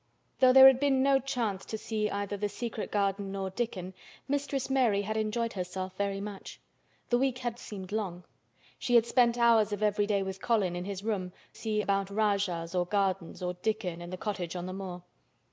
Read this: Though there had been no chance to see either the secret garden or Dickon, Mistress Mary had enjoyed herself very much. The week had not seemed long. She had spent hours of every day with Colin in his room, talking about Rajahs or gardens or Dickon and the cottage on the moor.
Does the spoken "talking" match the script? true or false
false